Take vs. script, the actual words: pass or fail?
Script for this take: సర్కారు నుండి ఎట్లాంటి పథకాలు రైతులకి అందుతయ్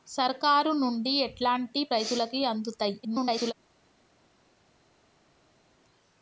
fail